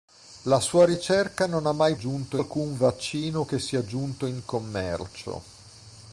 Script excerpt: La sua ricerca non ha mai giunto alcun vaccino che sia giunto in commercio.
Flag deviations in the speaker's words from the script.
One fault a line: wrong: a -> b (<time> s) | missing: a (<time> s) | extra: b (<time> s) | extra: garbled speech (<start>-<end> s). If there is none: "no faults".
no faults